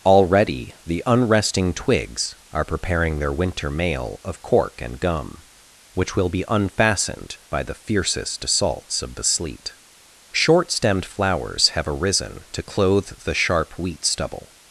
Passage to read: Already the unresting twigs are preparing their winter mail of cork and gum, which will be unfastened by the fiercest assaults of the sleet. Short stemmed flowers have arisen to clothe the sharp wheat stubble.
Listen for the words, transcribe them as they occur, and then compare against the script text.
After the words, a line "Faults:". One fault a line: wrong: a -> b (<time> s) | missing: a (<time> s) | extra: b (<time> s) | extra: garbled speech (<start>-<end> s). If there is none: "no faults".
Already the unresting twigs are preparing their winter mail of cork and gum, which will be unfastened by the fiercest assaults of the sleet. Short stemmed flowers have arisen to clothe the sharp wheat stubble.
Faults:
no faults